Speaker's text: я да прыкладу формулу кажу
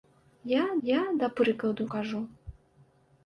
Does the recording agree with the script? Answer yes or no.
no